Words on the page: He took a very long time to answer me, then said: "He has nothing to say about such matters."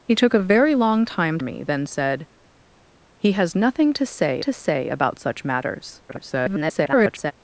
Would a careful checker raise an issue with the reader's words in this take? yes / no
yes